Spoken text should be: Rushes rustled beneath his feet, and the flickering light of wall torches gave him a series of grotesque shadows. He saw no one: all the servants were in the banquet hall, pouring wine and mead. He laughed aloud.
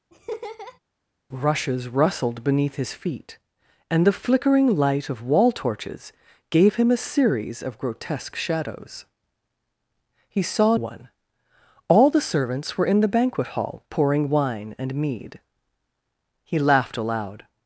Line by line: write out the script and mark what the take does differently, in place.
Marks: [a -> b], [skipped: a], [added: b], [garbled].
Rushes rustled beneath his feet, and the flickering light of wall torches gave him a series of grotesque shadows. He saw [skipped: no] one: all the servants were in the banquet hall, pouring wine and mead. He laughed aloud.